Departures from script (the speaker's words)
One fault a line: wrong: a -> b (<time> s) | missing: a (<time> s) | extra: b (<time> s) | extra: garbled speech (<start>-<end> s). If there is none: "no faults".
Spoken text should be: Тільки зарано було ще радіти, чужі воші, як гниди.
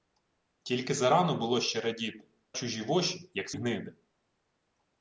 no faults